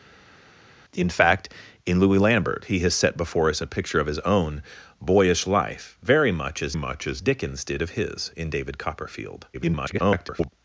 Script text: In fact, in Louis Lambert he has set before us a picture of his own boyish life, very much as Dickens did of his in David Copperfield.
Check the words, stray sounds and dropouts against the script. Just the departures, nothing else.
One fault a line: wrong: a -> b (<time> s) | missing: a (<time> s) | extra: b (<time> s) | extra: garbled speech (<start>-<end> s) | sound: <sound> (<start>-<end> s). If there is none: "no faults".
extra: much as (6.7 s)
extra: garbled speech (9.5-10.5 s)